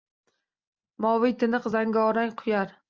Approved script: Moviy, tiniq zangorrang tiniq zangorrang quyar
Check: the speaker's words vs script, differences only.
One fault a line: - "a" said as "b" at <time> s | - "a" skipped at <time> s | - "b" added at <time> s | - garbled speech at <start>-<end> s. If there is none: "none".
- "tiniq zangorrang" skipped at 2.4 s